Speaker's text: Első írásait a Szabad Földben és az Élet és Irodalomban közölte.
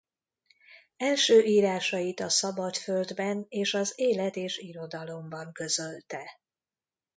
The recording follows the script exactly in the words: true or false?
true